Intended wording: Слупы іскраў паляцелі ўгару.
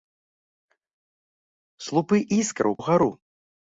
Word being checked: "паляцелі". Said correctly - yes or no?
no